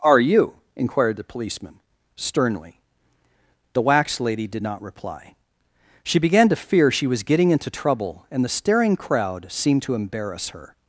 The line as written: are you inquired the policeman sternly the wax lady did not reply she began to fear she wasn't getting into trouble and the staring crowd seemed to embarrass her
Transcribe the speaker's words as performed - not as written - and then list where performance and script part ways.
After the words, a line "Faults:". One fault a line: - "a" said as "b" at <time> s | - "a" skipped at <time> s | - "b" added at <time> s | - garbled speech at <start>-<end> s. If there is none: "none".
are you inquired the policeman sternly the wax lady did not reply she began to fear she was getting into trouble and the staring crowd seemed to embarrass her
Faults:
- "wasn't" said as "was" at 7.1 s